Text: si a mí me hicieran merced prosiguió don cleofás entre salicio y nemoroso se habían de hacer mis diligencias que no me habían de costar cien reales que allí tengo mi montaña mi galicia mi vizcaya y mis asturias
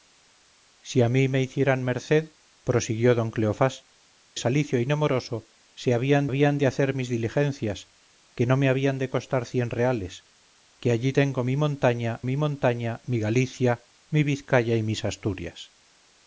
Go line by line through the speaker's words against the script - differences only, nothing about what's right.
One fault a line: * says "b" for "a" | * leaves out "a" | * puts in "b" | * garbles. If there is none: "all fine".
* leaves out "entre"
* puts in "habían"
* puts in "montaña mi"